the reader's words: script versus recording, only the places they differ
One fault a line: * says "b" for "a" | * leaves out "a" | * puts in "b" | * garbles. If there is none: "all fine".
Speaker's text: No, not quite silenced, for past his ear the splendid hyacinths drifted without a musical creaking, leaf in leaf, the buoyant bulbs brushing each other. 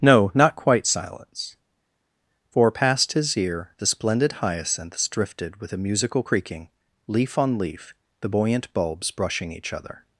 * says "silence" for "silenced"
* says "with" for "without"
* says "on" for "in"